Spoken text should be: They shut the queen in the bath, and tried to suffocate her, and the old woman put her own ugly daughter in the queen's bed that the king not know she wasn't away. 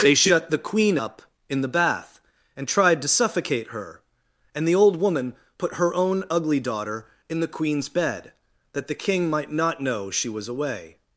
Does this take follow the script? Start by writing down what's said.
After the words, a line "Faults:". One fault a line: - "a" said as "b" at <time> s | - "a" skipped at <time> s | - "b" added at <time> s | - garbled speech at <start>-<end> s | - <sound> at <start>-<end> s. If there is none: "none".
They shut the queen up in the bath, and tried to suffocate her, and the old woman put her own ugly daughter in the queen's bed that the king might not know she was away.
Faults:
- "up" added at 0.9 s
- "might" added at 9.3 s
- "wasn't" said as "was" at 10.3 s